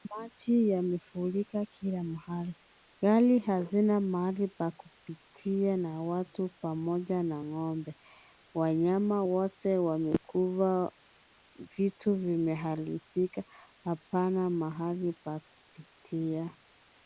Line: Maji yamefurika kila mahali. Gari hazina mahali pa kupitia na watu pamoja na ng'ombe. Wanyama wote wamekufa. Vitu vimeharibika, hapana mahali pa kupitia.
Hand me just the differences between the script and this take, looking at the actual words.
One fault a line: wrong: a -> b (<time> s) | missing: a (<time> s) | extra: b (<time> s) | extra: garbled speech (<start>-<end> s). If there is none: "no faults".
no faults